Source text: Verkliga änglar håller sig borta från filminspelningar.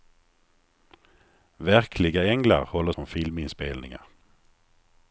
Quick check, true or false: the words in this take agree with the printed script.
false